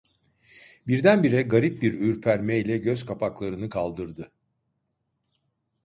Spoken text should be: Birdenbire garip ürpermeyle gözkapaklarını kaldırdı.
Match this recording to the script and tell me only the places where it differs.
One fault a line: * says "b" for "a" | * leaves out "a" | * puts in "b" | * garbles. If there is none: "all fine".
* puts in "bir"